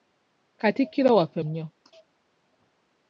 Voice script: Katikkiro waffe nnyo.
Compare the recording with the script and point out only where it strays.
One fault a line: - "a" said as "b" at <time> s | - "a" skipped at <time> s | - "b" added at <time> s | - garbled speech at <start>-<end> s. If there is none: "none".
none